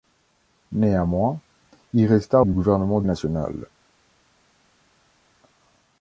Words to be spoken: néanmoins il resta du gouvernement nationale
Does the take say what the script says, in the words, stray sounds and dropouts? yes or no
yes